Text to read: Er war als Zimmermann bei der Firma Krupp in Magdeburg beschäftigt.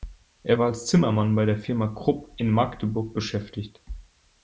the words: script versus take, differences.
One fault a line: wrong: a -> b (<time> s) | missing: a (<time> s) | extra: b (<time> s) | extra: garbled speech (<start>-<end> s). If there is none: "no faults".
no faults